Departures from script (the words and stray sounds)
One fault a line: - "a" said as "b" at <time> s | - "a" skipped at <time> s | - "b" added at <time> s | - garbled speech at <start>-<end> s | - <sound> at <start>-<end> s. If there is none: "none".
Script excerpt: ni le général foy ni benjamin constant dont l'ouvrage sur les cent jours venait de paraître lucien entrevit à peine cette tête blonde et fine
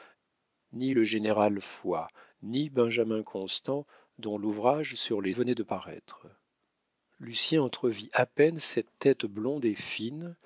- "cent jours" skipped at 5.3 s